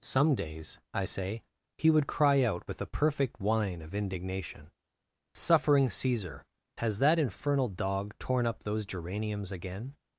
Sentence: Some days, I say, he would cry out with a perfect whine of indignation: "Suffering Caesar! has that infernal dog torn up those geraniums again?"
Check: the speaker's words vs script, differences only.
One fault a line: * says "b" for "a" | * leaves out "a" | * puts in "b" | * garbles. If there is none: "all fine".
all fine